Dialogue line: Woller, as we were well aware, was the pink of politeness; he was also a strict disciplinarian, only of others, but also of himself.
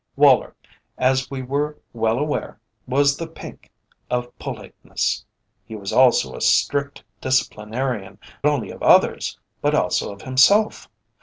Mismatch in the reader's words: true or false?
false